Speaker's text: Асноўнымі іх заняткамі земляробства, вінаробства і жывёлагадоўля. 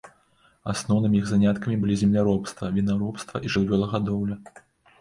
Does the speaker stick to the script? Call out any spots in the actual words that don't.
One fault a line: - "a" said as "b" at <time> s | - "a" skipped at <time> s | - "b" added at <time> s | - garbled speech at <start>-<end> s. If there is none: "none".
- "былі" added at 1.8 s